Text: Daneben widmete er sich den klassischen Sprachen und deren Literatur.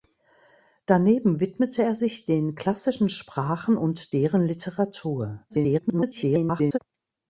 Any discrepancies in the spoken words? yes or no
yes